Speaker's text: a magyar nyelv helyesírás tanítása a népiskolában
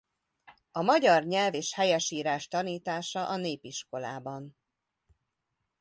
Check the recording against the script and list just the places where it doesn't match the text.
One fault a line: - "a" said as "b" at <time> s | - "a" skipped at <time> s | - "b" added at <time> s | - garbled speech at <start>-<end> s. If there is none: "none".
- "és" added at 1.5 s